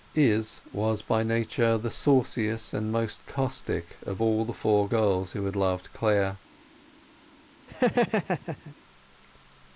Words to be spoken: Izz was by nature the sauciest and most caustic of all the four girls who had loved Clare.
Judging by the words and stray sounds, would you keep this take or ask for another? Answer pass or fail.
fail